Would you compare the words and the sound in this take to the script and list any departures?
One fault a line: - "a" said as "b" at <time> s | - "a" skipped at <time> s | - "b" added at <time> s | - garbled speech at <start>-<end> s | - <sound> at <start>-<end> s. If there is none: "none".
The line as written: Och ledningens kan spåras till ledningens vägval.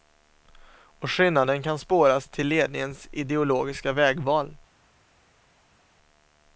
- "ledningens" said as "skillnaden" at 1.1 s
- "ideologiska" added at 3.1 s